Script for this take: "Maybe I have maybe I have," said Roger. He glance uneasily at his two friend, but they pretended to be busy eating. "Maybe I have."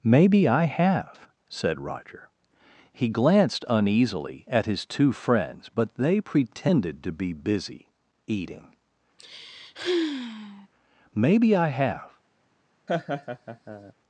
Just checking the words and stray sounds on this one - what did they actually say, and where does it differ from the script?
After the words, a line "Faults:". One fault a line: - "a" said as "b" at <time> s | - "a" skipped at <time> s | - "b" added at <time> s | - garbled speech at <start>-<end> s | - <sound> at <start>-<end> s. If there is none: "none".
"Maybe I have," said Roger. He glanced uneasily at his two friends, but they pretended to be busy eating. "Maybe I have."
Faults:
- "maybe I have" skipped at 1.3 s
- "glance" said as "glanced" at 3.1 s
- "friend" said as "friends" at 5.1 s
- sigh at 9.2-10.7 s
- laugh at 12.9-13.9 s